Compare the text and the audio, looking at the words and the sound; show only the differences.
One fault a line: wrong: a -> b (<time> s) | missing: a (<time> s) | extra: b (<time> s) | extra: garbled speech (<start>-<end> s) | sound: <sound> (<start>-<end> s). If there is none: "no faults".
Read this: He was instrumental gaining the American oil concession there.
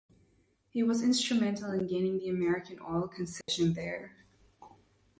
extra: in (1.7 s)
sound: dropout (3.4-3.5 s)